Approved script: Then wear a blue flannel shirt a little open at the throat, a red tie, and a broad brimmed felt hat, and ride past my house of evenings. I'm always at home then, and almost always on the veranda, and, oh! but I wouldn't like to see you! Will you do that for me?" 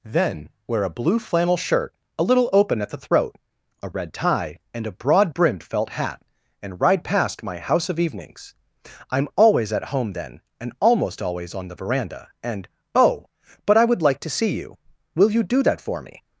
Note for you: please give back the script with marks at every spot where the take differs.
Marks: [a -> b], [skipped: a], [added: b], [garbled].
Then wear a blue flannel shirt a little open at the throat, a red tie, and a broad brimmed felt hat, and ride past my house of evenings. I'm always at home then, and almost always on the veranda, and, oh! but I [wouldn't -> would] like to see you! Will you do that for me?"